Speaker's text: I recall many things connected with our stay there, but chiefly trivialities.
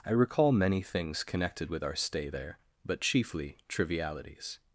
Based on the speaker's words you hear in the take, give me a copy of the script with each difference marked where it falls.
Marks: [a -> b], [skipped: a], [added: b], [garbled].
I recall many things connected with our stay there, but chiefly trivialities.